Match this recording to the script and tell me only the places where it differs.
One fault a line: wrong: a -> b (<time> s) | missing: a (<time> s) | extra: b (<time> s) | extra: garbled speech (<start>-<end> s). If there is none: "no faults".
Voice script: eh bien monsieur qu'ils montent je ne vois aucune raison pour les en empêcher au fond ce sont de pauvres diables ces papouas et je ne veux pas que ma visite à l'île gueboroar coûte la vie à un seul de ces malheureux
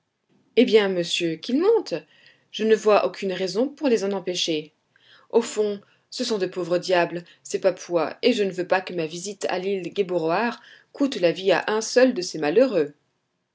no faults